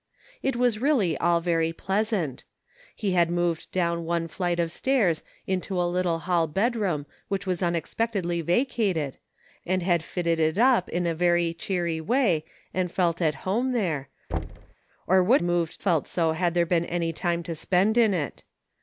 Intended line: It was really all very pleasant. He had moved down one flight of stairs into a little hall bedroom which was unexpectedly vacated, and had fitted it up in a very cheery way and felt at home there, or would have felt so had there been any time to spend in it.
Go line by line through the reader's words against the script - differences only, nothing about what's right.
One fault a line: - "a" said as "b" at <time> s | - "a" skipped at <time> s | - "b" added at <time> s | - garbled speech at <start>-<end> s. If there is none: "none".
- "have" said as "moved" at 15.4 s